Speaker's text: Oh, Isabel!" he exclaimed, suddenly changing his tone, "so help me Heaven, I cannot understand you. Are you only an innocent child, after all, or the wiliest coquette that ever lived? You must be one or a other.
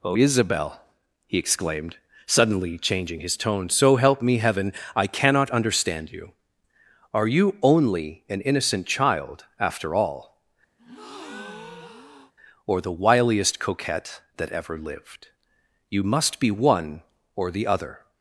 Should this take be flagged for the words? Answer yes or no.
yes